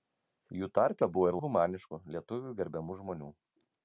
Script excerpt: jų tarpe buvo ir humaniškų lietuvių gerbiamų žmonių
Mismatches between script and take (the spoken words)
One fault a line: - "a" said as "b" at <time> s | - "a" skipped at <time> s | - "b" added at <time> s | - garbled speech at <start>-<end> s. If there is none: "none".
none